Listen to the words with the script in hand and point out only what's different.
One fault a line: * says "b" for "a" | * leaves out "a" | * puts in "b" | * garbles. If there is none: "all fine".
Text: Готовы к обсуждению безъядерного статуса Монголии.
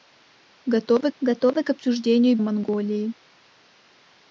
* puts in "готовы"
* leaves out "безъядерного статуса"